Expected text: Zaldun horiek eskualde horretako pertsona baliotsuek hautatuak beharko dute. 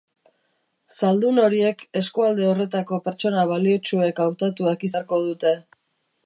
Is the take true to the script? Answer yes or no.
yes